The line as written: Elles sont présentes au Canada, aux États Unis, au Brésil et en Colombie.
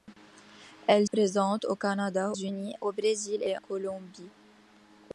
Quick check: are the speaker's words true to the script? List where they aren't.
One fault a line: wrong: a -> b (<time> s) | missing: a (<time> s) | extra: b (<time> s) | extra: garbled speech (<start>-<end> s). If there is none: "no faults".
missing: sont (1.1 s)
missing: aux États (2.3 s)
missing: en (3.6 s)